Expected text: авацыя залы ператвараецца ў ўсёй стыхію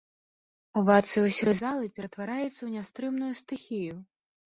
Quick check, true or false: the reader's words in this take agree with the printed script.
false